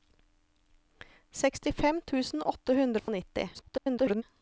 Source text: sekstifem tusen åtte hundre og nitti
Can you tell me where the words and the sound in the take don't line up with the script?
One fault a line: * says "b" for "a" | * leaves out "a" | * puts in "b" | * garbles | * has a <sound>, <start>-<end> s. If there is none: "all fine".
* has a dropout, 3.0-3.1 s
* garbles